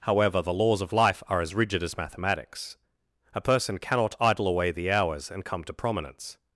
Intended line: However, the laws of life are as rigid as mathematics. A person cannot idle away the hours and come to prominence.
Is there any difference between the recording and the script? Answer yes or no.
no